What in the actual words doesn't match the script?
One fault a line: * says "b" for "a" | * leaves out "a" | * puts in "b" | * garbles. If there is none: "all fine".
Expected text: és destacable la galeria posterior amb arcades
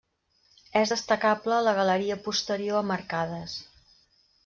all fine